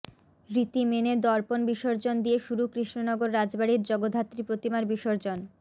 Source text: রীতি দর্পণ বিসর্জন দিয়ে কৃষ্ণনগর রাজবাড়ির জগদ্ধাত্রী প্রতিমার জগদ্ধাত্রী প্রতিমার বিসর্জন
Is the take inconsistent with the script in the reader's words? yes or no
yes